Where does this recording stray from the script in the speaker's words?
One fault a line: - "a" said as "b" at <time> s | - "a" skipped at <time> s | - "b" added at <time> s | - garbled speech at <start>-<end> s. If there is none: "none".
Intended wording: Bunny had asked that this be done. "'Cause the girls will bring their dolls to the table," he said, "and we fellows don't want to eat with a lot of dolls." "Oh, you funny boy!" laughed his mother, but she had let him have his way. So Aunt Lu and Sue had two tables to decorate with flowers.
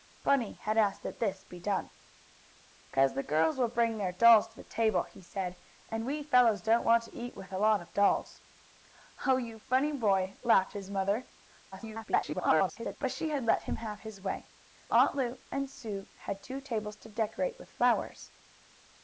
- garbled speech at 11.7-13.0 s
- "So" skipped at 14.5 s